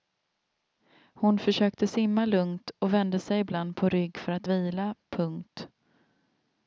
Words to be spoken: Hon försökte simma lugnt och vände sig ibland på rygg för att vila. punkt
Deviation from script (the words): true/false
false